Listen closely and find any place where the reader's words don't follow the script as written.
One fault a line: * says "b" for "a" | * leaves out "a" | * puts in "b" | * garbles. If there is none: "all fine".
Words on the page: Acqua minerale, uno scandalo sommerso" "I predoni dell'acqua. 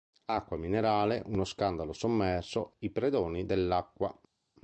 all fine